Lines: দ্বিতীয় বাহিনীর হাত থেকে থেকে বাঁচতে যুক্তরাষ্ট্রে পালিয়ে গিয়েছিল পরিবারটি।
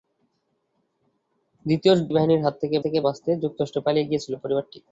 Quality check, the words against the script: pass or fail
pass